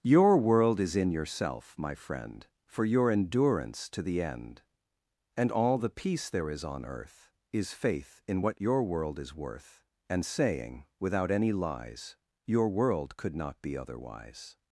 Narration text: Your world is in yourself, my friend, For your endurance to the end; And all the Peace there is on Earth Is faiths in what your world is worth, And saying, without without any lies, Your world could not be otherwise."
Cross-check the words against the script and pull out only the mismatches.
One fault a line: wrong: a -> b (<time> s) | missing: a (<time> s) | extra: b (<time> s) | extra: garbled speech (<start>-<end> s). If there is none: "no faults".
wrong: faiths -> faith (7.7 s)
missing: without (11.3 s)